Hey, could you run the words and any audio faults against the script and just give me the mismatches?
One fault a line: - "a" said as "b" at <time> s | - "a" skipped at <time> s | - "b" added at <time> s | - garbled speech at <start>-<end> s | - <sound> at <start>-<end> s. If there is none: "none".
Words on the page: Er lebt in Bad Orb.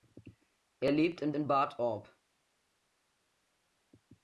- "in" added at 1.3 s